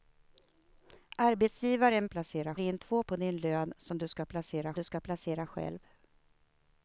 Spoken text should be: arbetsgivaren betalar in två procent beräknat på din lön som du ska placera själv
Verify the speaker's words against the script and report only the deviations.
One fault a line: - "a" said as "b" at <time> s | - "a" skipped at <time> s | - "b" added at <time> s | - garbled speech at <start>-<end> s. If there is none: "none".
- "betalar" said as "placera" at 2.1 s
- "procent beräknat" skipped at 3.0 s
- "du ska placera" added at 4.7 s